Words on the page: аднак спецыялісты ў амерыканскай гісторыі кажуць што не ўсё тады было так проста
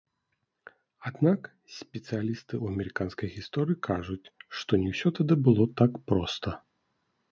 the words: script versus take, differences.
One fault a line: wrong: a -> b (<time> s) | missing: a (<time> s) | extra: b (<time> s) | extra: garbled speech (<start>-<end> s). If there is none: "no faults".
no faults